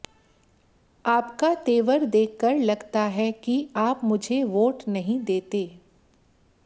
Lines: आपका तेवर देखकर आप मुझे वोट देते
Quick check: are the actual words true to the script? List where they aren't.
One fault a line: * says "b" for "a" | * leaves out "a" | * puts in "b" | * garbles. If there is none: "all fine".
* puts in "लगता है कि"
* puts in "नहीं"